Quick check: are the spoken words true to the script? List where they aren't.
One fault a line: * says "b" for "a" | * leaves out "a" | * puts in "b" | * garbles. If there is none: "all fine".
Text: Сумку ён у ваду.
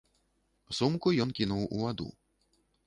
* puts in "кінуў"